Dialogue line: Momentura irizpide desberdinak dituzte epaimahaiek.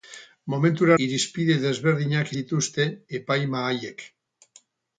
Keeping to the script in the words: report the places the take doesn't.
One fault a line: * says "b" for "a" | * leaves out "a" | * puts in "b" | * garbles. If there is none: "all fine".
all fine